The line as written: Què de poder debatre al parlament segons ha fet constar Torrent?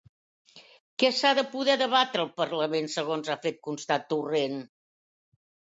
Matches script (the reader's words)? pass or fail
fail